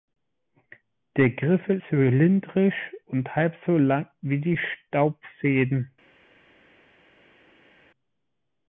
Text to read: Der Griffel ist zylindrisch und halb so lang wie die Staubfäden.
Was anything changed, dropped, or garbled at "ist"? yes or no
yes